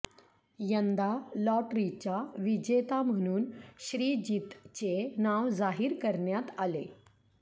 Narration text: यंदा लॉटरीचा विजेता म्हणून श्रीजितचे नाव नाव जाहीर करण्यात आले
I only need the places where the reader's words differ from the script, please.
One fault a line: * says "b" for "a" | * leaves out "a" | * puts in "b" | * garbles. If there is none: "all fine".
* leaves out "नाव"